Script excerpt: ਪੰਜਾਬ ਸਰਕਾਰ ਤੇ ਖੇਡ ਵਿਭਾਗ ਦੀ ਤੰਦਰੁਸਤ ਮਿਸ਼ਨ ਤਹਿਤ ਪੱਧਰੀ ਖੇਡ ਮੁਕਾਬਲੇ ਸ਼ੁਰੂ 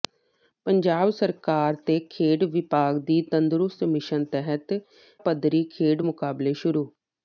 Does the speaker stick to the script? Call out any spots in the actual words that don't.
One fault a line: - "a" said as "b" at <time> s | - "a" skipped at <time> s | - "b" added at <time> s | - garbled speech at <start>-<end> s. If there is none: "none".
none